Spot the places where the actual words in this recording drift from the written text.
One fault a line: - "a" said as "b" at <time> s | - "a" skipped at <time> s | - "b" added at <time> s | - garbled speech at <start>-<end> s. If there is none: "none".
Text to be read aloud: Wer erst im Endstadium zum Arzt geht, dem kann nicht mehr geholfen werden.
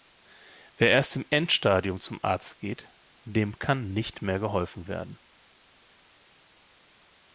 none